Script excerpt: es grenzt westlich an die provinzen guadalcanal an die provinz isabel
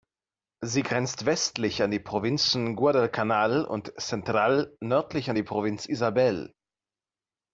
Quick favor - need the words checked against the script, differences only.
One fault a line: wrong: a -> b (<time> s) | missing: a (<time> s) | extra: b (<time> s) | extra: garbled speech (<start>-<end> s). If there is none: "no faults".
wrong: es -> sie (0.6 s)
extra: und central nördlich (3.6 s)